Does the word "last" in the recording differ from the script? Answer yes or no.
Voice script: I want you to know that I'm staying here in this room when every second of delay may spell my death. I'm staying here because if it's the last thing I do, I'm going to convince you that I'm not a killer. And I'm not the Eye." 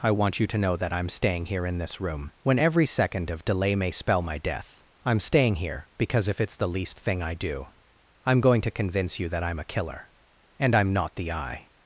yes